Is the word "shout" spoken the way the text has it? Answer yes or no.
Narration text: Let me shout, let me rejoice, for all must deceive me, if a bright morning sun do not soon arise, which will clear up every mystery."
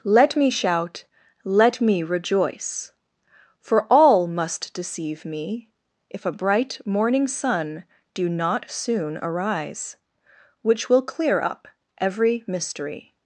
yes